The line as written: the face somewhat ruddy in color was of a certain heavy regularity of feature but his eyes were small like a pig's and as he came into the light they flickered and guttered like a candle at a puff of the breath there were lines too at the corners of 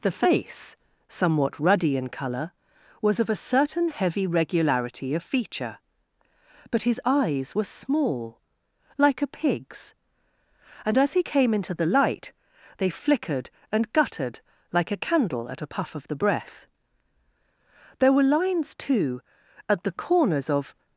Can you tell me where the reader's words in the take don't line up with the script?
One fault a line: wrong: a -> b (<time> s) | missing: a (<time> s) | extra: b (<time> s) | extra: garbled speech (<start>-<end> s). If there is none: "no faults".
no faults